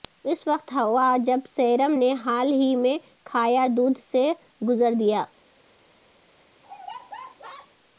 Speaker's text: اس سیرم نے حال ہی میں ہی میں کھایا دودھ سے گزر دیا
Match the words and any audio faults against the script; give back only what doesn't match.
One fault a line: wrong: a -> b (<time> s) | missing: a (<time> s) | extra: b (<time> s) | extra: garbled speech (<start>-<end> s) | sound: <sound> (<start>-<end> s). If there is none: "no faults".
extra: وقت ہوا جب (0.5 s)
missing: ہی میں (3.0 s)
sound: laugh (6.6-7.7 s)